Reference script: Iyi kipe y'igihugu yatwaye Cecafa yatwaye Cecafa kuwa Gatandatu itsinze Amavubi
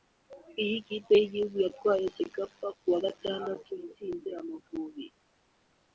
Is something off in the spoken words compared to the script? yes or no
yes